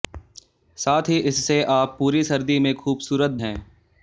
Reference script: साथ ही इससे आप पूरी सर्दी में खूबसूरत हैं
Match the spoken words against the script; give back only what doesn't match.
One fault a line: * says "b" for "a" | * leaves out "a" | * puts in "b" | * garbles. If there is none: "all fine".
all fine